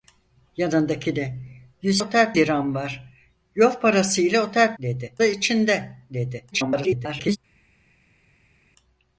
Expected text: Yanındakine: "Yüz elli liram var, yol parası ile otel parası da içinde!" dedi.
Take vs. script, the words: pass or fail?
fail